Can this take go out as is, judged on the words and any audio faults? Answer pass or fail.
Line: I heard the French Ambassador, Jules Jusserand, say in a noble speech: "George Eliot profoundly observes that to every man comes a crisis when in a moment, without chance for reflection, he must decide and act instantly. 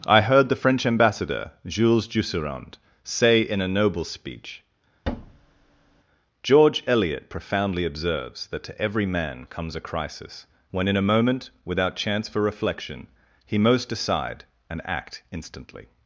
fail